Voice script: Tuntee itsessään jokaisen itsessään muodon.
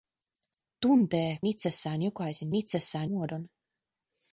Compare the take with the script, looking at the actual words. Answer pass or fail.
pass